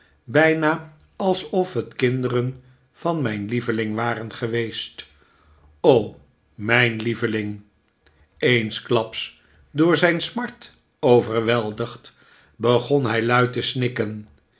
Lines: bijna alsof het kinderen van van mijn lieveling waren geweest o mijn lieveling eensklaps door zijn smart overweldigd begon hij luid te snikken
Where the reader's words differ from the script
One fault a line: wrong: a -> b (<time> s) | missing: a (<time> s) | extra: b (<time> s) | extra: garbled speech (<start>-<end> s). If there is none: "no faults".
missing: van (3.2 s)